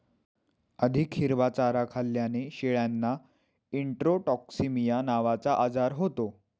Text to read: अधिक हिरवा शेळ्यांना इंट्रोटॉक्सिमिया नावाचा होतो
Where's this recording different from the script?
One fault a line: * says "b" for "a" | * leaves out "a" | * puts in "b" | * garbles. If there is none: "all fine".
* puts in "चारा खाल्ल्याने"
* puts in "आजार"